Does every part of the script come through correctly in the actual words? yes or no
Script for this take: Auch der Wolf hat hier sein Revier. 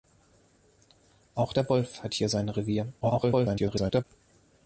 no